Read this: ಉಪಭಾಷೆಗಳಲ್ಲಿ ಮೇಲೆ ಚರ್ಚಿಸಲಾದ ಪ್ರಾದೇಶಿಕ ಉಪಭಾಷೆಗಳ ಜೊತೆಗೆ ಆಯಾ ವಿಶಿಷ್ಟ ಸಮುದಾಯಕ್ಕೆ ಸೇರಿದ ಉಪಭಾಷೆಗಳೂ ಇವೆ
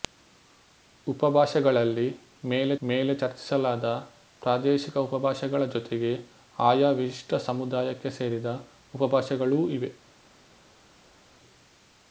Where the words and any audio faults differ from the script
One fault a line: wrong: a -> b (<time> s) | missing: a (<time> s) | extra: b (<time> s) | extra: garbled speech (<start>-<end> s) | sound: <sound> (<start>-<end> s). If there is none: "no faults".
extra: ಮೇಲೆ (2.8 s)